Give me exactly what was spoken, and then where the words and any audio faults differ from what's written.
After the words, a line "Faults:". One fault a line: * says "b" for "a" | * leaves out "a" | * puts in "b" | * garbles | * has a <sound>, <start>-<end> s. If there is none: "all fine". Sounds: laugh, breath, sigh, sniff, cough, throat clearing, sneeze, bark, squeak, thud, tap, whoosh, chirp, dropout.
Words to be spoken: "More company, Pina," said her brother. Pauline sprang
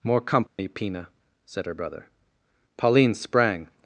"More company, Pina," said her brother. Pauline sprang
Faults:
* has a dropout, 0.5-0.6 s